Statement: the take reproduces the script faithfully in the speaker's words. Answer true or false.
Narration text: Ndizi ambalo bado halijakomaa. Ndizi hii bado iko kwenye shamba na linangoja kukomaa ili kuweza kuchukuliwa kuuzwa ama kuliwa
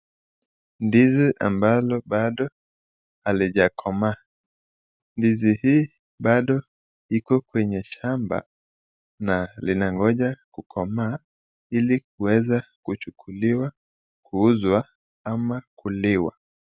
true